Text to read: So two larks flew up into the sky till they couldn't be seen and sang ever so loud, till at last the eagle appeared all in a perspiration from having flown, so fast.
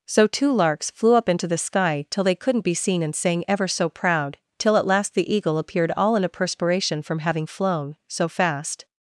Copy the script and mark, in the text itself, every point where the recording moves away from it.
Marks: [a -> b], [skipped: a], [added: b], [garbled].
So two larks flew up into the sky till they couldn't be seen and sang ever so [loud, -> proud] till at last the eagle appeared all in a perspiration from having flown, so fast.